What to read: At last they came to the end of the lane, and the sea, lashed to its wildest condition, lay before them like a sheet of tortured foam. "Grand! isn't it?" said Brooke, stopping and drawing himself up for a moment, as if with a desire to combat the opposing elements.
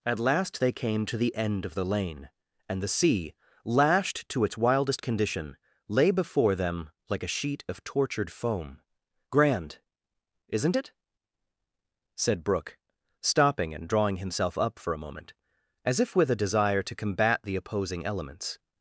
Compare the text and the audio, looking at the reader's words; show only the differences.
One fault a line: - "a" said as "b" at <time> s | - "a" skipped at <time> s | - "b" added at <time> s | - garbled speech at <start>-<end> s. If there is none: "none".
none